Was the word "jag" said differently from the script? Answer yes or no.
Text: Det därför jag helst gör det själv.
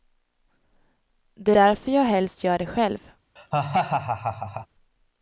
no